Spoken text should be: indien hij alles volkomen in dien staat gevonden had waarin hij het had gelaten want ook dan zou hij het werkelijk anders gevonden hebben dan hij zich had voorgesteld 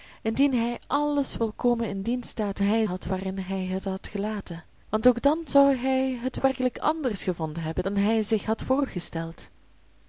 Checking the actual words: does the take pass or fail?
fail